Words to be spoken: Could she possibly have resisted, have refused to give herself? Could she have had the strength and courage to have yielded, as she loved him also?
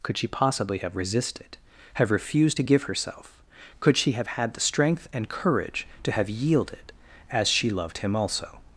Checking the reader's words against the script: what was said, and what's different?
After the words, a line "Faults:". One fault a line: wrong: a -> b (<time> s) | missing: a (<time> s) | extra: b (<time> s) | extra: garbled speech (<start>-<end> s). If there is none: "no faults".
Could she possibly have resisted, have refused to give herself? Could she have had the strength and courage to have yielded, as she loved him also?
Faults:
no faults